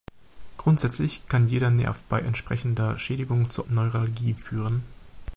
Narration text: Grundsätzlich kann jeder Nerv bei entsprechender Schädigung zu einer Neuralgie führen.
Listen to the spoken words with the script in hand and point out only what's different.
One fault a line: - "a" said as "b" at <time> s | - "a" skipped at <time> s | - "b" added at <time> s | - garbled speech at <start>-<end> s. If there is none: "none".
- "einer" skipped at 3.7 s